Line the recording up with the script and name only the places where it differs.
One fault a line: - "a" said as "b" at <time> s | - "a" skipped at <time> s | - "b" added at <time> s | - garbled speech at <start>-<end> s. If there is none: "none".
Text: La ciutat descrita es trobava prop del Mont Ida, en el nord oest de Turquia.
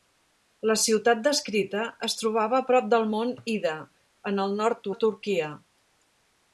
- "oest" skipped at 4.9 s